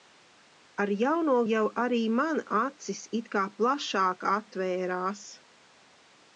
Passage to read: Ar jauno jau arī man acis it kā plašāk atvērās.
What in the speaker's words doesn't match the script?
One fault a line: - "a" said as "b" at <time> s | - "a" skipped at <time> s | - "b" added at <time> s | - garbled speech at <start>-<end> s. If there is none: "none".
none